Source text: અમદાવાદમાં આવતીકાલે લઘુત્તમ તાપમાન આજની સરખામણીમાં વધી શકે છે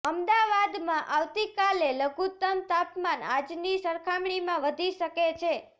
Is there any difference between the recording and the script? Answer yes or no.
no